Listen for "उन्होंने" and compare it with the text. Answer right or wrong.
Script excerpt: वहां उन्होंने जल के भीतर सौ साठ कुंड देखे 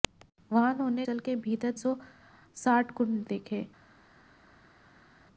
right